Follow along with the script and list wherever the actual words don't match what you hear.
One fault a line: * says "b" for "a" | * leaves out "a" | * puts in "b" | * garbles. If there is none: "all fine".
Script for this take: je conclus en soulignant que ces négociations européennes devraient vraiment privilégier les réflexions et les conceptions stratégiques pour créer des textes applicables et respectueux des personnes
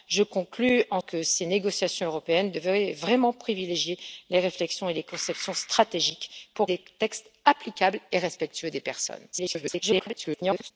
* leaves out "soulignant"
* leaves out "créer"
* garbles